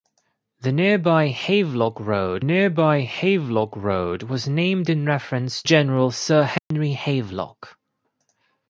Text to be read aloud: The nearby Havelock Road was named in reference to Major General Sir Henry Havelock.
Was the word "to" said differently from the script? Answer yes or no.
yes